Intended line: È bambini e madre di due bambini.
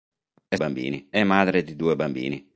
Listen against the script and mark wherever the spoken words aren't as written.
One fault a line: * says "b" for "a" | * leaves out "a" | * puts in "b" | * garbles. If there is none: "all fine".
all fine